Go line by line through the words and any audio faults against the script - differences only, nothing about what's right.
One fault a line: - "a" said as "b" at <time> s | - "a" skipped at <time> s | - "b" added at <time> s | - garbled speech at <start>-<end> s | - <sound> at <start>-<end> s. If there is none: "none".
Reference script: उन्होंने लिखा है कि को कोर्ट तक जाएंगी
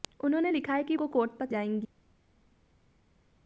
none